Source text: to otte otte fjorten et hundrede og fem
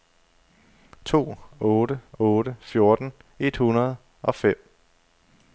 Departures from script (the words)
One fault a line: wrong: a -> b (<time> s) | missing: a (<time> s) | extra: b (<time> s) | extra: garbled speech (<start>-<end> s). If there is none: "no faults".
no faults